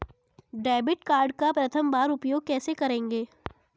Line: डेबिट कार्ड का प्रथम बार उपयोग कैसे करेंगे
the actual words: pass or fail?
pass